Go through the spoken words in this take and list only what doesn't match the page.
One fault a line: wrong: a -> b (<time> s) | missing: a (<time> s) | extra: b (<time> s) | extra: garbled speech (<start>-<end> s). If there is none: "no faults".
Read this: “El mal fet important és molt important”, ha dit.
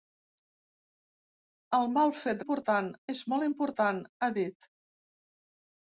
no faults